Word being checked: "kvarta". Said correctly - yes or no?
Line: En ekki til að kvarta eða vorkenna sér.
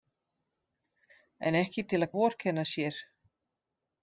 no